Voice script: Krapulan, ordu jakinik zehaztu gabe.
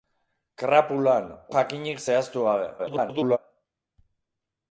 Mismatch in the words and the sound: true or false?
true